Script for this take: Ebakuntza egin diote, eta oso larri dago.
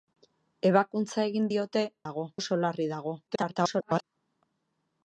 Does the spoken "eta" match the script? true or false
false